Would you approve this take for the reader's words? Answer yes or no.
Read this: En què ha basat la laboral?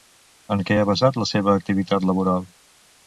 no